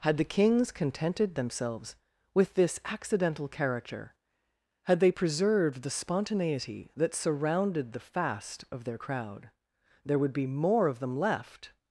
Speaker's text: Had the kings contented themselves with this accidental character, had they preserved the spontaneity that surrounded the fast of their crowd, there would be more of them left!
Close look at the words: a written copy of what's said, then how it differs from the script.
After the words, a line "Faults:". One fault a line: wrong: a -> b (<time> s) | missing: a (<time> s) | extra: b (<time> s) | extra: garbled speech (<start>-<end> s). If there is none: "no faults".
Had the kings contented themselves with this accidental character, had they preserved the spontaneity that surrounded the fast of their crowd, there would be more of them left!
Faults:
no faults